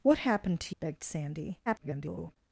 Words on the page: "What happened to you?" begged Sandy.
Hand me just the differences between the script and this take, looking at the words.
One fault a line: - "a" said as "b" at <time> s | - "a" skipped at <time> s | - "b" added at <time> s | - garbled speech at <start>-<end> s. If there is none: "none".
- "you" skipped at 0.8 s
- garbled speech at 1.7-2.4 s